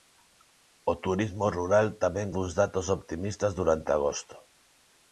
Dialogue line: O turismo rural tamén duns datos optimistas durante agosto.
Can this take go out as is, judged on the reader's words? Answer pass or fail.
pass